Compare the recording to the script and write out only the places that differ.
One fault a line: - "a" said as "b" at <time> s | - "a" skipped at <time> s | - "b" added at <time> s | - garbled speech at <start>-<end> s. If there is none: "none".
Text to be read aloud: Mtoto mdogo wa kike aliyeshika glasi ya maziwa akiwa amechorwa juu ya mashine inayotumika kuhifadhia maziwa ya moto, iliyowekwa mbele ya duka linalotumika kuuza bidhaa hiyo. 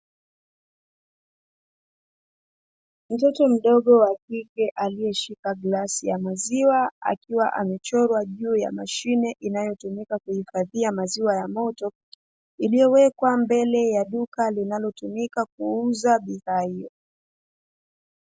none